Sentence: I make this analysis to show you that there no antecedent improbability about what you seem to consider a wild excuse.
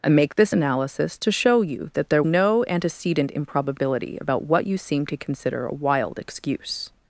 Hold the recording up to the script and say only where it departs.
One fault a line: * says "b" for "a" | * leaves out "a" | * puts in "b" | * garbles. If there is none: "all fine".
all fine